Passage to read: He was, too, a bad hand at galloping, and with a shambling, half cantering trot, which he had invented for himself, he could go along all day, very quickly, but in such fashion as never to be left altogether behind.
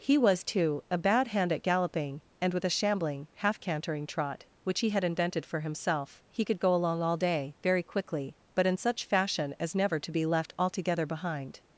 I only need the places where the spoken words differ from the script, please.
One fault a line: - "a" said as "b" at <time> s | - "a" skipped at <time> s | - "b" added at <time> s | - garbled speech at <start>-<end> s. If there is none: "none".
none